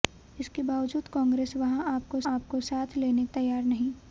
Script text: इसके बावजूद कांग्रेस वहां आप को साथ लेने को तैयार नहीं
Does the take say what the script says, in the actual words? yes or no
no